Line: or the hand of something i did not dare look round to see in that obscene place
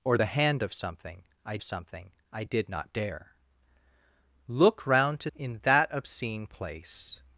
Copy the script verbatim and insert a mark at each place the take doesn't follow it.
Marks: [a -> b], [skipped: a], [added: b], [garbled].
or the hand of something i [added: something i] did not dare look round to [skipped: see] in that obscene place